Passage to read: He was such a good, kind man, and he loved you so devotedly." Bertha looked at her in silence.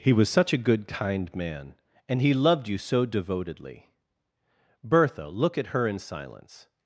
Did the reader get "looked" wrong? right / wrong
wrong